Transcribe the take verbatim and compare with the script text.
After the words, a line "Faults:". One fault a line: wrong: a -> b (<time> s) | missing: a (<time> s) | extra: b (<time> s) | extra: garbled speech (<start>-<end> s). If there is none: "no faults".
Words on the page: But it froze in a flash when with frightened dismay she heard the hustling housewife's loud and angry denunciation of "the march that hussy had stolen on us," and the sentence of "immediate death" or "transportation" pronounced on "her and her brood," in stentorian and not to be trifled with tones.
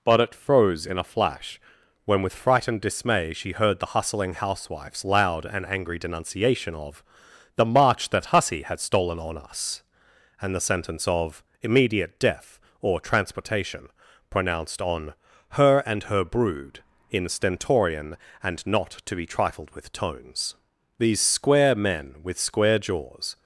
But it froze in a flash when with frightened dismay she heard the hustling housewife's loud and angry denunciation of "the march that hussy had stolen on us," and the sentence of "immediate death" or "transportation" pronounced on "her and her brood," in stentorian and not to be trifled with tones. These square men with square jaws
Faults:
extra: These square men with square jaws (21.0 s)